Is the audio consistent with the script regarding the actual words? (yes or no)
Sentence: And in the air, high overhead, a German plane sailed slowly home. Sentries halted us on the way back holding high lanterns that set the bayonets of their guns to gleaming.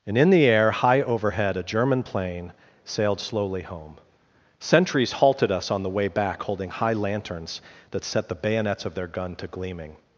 no